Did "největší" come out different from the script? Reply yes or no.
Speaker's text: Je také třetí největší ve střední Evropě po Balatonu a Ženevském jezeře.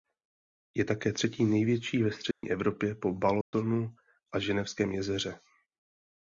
no